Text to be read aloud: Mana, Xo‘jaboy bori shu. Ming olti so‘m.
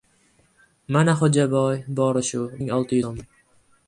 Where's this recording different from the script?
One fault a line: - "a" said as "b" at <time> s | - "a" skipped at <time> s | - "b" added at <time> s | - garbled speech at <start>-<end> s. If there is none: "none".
none